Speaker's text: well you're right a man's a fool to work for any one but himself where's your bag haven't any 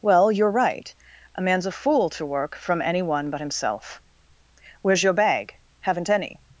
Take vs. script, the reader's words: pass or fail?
fail